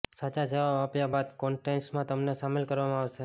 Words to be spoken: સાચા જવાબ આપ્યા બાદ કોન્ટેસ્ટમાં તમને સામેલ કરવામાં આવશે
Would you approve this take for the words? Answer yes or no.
yes